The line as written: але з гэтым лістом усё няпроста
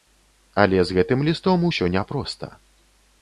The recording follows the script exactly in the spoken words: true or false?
true